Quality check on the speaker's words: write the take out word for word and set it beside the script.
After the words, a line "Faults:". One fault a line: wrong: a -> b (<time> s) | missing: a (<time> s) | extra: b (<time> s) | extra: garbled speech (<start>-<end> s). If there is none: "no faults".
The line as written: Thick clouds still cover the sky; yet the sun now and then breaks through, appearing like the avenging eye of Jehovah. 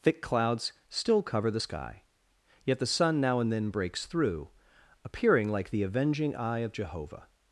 Thick clouds still cover the sky; yet the sun now and then breaks through, appearing like the avenging eye of Jehovah.
Faults:
no faults